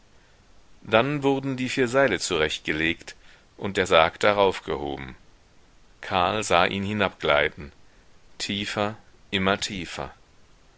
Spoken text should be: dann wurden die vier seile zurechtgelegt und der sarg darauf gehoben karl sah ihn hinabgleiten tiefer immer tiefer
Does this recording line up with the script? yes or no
yes